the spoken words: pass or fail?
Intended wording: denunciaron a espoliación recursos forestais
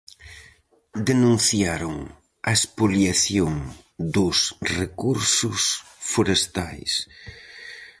fail